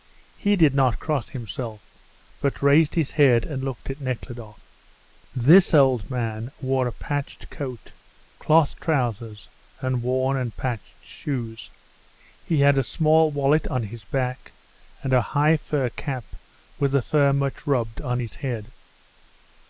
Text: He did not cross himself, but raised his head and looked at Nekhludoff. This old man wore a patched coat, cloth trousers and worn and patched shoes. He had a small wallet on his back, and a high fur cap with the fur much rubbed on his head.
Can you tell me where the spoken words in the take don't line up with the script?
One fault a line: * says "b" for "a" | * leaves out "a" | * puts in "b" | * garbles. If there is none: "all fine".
all fine